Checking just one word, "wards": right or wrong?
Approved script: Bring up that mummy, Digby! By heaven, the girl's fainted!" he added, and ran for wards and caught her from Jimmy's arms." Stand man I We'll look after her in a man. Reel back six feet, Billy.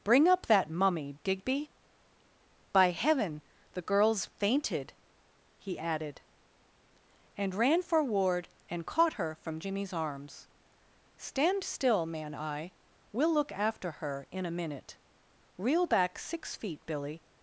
wrong